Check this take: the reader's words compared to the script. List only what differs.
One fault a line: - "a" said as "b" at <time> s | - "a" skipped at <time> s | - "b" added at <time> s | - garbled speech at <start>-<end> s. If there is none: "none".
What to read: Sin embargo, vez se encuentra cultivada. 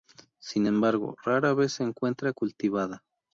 - "rara" added at 1.2 s